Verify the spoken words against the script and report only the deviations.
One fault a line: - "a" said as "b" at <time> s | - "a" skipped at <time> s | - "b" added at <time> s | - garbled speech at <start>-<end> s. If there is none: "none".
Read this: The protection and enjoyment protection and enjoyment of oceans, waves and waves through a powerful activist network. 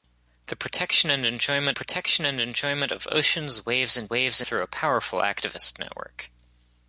none